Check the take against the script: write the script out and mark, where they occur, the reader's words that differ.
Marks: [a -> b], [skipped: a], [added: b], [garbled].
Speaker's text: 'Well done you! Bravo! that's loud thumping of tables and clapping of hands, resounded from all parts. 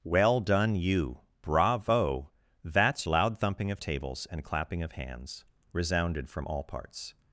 'Well done you! Bravo! that's loud thumping of tables and clapping of hands, resounded from all parts.